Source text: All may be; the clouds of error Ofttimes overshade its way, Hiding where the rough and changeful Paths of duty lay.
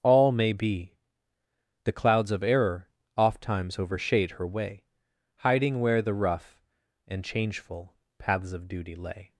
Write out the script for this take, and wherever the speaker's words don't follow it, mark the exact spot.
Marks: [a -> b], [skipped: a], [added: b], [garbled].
All may be; the clouds of error Ofttimes overshade [its -> her] way, Hiding where the rough and changeful Paths of duty lay.